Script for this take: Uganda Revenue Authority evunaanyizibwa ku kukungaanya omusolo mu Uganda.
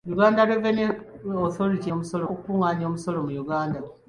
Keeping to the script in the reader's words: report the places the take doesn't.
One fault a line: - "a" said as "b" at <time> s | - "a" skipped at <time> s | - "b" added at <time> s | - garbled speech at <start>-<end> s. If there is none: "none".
- "evunaanyizibwa" said as "omusolo" at 1.9 s